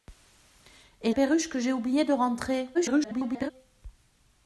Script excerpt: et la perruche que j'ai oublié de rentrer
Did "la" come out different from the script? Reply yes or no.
yes